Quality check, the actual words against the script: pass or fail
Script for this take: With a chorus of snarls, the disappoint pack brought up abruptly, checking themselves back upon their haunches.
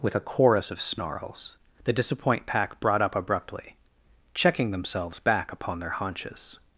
pass